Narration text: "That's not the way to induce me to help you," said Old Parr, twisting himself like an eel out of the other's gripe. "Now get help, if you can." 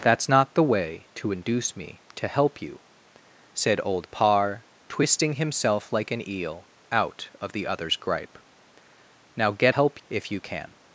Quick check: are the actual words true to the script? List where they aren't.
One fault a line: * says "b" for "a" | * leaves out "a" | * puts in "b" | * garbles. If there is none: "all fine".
all fine